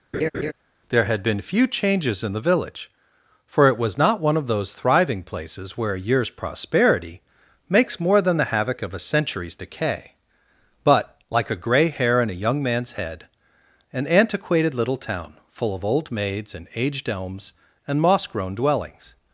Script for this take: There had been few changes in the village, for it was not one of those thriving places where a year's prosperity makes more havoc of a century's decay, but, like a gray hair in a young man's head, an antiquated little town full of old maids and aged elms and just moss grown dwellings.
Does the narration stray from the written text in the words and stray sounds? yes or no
yes